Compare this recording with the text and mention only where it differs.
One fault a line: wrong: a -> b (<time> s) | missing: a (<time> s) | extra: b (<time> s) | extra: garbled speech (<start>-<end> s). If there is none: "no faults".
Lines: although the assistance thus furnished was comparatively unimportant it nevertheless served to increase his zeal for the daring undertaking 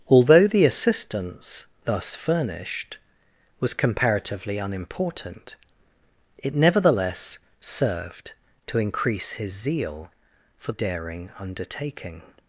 missing: the (10.7 s)